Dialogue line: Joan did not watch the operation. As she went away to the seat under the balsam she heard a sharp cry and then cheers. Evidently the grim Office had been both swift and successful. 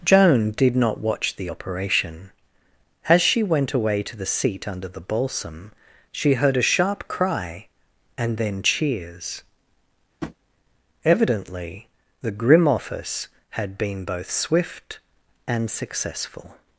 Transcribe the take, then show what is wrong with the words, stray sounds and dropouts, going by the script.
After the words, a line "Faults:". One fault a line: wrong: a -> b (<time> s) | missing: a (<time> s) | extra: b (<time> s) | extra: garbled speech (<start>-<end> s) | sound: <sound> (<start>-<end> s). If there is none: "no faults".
Joan did not watch the operation. As she went away to the seat under the balsam she heard a sharp cry and then cheers. Evidently the grim Office had been both swift and successful.
Faults:
sound: tap (10.2-10.4 s)